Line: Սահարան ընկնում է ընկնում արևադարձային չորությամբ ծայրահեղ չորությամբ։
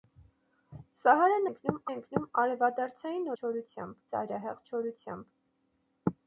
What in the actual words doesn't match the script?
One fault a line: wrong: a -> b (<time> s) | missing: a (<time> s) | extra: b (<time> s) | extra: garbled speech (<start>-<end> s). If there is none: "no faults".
no faults